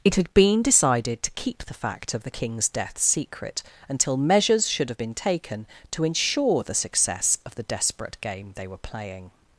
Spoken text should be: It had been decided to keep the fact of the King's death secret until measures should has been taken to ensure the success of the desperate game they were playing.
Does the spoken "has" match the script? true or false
false